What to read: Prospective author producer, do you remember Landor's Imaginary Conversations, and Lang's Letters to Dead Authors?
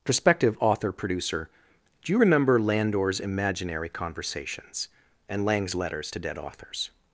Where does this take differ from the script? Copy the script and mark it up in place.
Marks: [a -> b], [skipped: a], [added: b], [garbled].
Prospective author producer, do you remember Landor's Imaginary Conversations, and Lang's Letters to Dead Authors?